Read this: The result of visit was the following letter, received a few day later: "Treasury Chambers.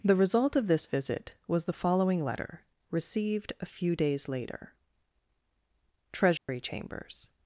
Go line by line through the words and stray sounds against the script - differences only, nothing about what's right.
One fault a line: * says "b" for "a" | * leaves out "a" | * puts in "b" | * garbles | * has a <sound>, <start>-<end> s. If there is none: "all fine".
* puts in "this"
* says "days" for "day"
* has a dropout, 6.4-6.5 s